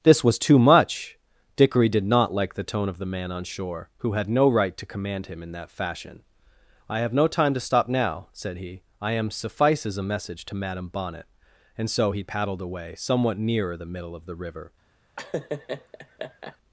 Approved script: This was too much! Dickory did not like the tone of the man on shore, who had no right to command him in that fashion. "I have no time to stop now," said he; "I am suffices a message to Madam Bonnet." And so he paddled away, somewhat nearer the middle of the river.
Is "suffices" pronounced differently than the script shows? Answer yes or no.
no